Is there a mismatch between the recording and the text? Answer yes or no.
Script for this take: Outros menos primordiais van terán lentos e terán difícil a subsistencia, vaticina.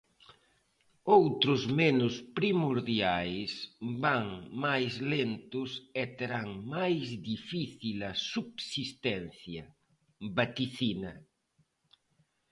yes